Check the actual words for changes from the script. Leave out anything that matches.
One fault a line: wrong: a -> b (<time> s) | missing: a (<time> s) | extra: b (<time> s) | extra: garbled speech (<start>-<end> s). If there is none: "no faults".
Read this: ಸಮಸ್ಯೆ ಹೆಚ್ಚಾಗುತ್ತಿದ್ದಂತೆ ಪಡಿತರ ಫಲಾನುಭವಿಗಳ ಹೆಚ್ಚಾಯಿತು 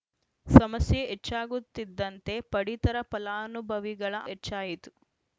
no faults